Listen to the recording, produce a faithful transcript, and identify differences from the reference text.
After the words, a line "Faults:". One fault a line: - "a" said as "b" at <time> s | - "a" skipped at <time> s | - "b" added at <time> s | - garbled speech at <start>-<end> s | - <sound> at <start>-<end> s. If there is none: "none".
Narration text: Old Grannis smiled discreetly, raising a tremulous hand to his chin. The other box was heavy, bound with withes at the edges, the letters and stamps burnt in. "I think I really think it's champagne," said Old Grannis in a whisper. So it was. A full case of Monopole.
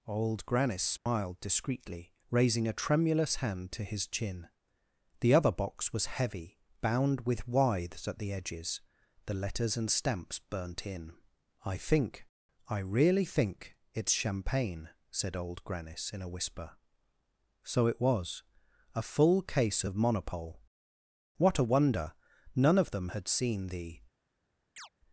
Old Grannis smiled discreetly, raising a tremulous hand to his chin. The other box was heavy, bound with withes at the edges, the letters and stamps burnt in. "I think I really think it's champagne," said Old Grannis in a whisper. So it was. A full case of Monopole. What a wonder! None of them had seen the
Faults:
- dropout at 1.0-1.1 s
- "What a wonder None of them had seen the" added at 21.4 s
- chirp at 24.8-24.9 s